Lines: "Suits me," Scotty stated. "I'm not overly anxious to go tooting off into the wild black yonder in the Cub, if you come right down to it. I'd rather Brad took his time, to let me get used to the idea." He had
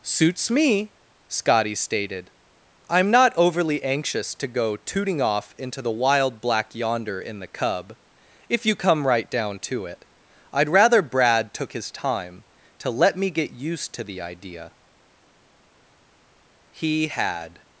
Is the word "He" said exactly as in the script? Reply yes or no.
yes